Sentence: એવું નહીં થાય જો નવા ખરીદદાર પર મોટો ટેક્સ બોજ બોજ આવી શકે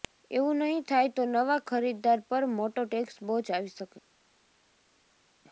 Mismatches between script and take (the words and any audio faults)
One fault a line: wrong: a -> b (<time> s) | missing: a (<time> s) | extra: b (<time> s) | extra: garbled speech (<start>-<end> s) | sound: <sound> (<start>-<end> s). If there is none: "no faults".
wrong: જો -> તો (1.1 s)
missing: બોજ (3.5 s)